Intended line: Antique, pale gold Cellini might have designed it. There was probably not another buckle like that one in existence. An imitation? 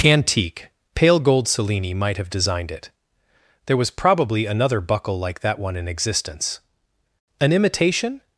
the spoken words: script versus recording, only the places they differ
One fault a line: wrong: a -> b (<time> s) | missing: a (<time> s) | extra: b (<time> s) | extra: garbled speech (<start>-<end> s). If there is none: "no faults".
missing: not (4.5 s)